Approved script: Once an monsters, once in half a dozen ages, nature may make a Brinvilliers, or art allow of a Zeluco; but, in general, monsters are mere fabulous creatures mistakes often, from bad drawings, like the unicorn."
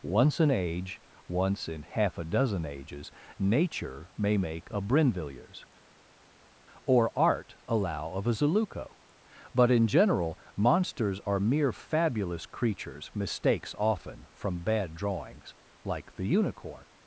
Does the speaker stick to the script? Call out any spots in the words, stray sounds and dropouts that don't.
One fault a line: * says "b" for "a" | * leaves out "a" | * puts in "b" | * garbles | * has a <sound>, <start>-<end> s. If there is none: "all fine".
* says "age" for "monsters"